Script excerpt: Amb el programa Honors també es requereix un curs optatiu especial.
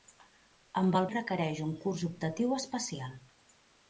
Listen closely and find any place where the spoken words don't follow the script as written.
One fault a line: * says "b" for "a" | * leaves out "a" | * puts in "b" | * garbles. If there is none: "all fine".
* leaves out "programa Honors també"